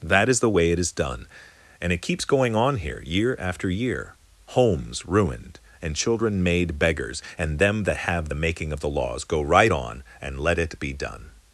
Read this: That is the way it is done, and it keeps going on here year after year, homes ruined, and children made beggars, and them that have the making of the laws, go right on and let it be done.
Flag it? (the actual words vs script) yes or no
no